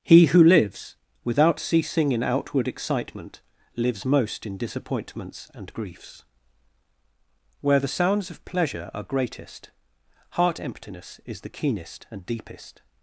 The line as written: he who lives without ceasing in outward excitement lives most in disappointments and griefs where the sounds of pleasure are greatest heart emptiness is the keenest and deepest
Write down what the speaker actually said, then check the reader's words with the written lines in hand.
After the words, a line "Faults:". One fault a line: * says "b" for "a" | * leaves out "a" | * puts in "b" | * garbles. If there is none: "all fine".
he who lives without ceasing in outward excitement lives most in disappointments and griefs where the sounds of pleasure are greatest heart emptiness is the keenest and deepest
Faults:
all fine